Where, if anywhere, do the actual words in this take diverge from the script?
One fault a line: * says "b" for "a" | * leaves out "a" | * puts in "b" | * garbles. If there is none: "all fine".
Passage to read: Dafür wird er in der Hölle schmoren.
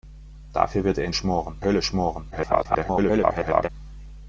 * says "schmoren" for "der"
* garbles